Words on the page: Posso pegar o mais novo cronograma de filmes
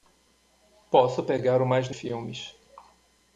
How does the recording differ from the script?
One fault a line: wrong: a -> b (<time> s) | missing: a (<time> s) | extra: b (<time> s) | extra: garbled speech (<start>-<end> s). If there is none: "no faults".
missing: novo cronograma de (1.9 s)